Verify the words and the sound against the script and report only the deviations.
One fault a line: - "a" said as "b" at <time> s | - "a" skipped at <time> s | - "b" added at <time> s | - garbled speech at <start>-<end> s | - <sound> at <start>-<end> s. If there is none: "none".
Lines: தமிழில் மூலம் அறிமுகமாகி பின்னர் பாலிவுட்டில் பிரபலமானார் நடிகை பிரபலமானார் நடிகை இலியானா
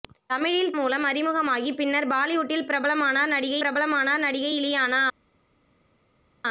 none